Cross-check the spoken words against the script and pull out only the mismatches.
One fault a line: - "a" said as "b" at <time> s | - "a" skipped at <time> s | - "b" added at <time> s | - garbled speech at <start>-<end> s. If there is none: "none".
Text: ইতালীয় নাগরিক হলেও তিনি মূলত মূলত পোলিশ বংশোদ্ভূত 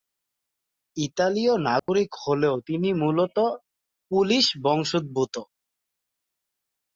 - "মূলত" skipped at 3.4 s